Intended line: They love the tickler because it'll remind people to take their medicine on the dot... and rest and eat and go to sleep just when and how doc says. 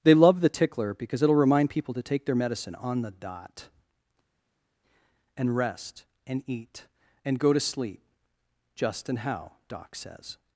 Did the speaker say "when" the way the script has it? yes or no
no